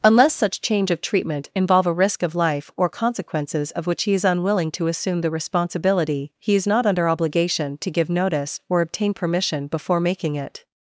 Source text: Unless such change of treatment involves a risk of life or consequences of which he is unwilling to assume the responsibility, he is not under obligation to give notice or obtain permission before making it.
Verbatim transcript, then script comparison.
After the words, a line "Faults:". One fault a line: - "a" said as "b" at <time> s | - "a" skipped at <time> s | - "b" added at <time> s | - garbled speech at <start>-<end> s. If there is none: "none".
Unless such change of treatment involve a risk of life or consequences of which he is unwilling to assume the responsibility, he is not under obligation to give notice or obtain permission before making it.
Faults:
- "involves" said as "involve" at 1.6 s